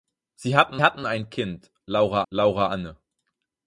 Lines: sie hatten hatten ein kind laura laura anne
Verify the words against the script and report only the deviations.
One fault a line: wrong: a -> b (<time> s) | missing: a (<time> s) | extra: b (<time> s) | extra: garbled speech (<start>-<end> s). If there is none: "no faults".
no faults